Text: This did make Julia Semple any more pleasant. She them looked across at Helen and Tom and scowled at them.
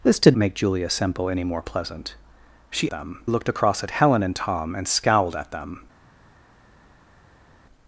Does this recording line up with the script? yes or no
yes